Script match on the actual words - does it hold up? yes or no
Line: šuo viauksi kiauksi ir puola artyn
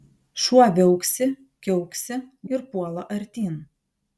yes